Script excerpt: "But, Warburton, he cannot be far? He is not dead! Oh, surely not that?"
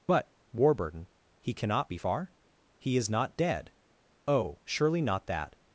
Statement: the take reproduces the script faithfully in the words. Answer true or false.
true